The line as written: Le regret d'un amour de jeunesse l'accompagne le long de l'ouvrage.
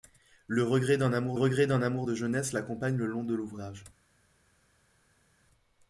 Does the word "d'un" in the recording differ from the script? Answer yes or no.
no